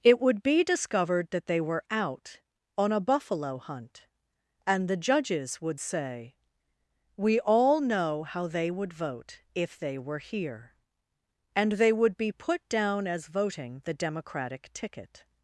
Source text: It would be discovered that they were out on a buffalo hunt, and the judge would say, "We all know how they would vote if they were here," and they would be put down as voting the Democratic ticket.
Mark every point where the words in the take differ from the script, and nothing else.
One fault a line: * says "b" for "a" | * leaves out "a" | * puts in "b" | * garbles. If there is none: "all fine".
* says "judges" for "judge"